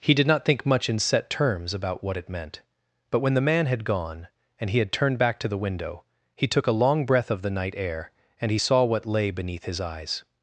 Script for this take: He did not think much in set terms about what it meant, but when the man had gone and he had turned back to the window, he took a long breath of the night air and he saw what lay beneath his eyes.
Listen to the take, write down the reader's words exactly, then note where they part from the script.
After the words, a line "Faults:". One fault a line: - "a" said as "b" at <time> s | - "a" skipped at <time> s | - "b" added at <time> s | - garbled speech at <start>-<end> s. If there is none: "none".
He did not think much in set terms about what it meant, but when the man had gone and he had turned back to the window, he took a long breath of the night air and he saw what lay beneath his eyes.
Faults:
none